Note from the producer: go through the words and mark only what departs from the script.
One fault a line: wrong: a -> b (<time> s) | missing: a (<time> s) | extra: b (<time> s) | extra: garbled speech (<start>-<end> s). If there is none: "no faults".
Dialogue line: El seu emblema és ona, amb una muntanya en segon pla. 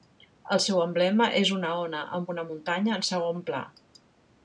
extra: una (1.6 s)